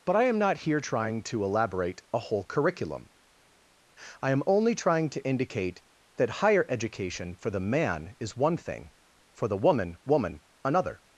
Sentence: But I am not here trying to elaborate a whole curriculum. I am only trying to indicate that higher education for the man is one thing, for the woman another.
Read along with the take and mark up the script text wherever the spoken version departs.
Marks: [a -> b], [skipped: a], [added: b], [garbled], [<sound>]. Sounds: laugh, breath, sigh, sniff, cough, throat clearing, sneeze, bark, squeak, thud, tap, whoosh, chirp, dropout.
But I am not here trying to elaborate a whole curriculum. I am only trying to indicate that higher education for the man is one thing, for the woman [added: woman] another.